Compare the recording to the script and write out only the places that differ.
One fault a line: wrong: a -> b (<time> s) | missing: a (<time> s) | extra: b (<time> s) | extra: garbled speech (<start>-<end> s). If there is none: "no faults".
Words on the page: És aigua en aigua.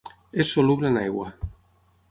wrong: aigua -> soluble (0.6 s)